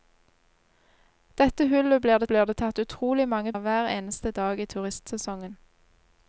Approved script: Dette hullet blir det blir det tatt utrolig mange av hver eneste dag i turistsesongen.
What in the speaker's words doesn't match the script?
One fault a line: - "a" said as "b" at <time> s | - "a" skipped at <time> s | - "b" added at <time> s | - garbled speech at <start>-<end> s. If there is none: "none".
none